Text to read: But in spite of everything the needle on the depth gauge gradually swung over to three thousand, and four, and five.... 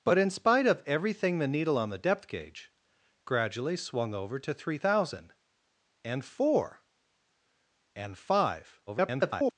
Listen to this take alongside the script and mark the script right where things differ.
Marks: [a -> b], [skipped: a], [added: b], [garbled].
But in spite of everything the needle on the depth gauge gradually swung over to three thousand, and four, and five.... [garbled]